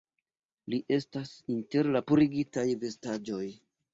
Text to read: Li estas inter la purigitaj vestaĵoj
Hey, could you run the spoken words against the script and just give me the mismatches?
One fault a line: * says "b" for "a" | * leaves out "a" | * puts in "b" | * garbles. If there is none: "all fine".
all fine